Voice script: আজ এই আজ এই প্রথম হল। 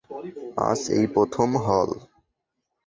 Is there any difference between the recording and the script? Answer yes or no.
yes